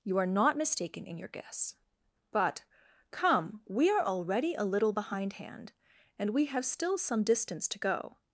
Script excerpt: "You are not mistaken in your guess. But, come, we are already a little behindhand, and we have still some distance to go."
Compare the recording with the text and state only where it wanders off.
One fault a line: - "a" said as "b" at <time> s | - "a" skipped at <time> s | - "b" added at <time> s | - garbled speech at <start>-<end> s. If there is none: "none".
none